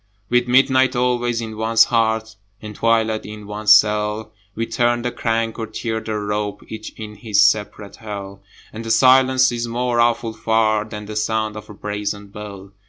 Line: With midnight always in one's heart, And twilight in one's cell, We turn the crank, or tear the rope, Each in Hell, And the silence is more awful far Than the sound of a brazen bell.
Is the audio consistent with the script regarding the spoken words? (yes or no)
no